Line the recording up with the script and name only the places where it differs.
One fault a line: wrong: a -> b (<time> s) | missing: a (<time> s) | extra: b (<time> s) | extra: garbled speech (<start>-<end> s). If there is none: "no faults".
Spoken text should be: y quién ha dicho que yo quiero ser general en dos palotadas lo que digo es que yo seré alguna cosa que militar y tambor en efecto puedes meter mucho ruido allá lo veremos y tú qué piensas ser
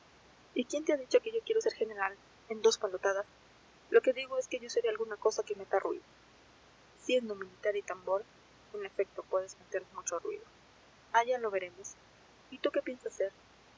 extra: te (0.8 s)
extra: meta ruido siendo (5.5 s)